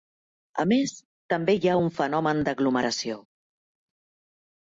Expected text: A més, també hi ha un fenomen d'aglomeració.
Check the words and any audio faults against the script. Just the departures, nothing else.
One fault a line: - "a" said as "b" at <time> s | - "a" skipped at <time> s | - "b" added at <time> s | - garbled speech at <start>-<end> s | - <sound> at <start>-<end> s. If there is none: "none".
none